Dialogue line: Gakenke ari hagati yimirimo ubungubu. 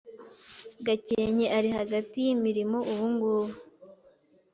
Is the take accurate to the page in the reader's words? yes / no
yes